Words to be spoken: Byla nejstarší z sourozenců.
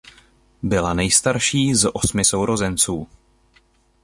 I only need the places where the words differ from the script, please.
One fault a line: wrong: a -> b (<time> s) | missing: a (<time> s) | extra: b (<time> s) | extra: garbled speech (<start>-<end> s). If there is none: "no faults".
extra: osmi (1.9 s)